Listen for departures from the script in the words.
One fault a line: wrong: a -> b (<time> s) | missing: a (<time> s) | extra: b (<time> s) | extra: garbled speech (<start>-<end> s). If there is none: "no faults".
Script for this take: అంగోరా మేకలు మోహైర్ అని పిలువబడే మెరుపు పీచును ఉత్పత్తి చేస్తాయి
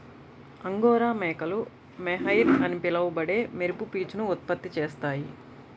no faults